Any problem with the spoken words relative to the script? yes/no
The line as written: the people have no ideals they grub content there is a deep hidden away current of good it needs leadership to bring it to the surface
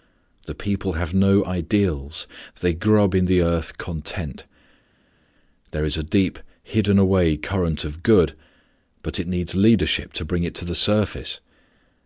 yes